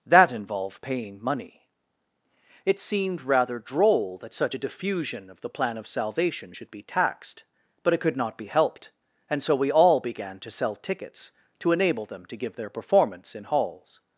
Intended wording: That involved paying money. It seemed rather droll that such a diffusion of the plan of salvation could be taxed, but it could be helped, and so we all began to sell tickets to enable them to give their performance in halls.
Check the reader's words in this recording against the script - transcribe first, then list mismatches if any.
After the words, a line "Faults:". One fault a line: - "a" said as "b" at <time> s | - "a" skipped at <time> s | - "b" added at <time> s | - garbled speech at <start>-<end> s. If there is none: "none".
That involved paying money. It seemed rather droll that such a diffusion of the plan of salvation should be taxed, but it could not be helped, and so we all began to sell tickets to enable them to give their performance in halls.
Faults:
- "could" said as "should" at 6.5 s
- "not" added at 8.2 s